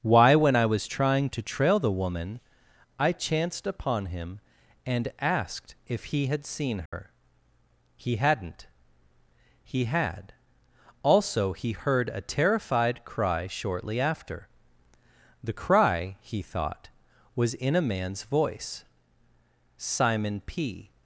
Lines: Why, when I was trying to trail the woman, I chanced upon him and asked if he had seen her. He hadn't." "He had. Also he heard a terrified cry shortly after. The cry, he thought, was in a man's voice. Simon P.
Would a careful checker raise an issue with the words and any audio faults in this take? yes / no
yes